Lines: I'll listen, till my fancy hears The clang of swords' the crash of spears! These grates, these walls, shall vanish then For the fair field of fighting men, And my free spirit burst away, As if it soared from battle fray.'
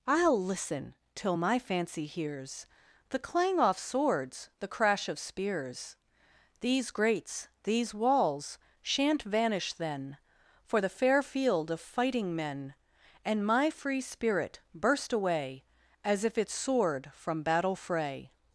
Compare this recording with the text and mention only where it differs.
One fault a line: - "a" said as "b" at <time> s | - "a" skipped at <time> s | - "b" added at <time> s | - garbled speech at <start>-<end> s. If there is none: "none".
- "of" said as "off" at 3.6 s
- "shall" said as "shan't" at 8.8 s